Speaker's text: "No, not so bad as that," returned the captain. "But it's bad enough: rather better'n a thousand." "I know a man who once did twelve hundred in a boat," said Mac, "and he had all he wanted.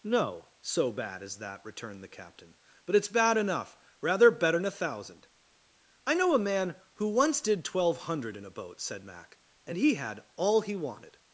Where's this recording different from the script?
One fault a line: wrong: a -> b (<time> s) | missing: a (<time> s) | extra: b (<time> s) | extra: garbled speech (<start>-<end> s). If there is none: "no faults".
missing: not (0.5 s)